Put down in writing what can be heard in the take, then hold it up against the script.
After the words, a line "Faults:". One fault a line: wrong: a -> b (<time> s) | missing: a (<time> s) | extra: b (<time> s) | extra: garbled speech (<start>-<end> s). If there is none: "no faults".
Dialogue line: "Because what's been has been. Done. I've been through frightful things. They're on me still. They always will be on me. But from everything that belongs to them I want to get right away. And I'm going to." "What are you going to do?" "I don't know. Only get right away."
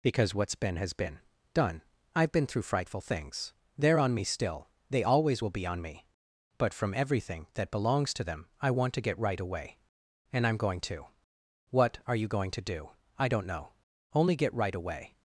"Because what's been has been. Done. I've been through frightful things. They're on me still. They always will be on me. But from everything that belongs to them I want to get right away. And I'm going to." "What are you going to do?" "I don't know. Only get right away."
Faults:
no faults